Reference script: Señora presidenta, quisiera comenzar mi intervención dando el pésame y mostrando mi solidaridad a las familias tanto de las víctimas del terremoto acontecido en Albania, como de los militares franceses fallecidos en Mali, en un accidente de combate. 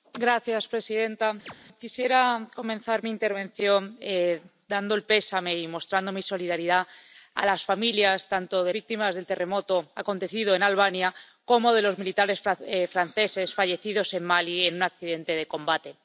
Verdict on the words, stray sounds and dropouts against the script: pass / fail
fail